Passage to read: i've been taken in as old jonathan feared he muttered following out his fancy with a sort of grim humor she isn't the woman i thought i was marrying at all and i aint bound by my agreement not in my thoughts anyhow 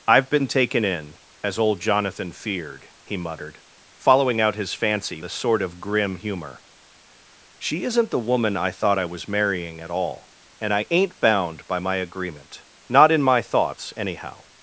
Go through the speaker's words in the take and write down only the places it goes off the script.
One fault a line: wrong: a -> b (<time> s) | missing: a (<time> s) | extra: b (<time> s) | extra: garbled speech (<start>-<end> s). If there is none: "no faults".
missing: with (5.2 s)